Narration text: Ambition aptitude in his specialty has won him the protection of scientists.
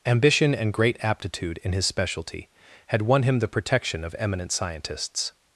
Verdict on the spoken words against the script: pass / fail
fail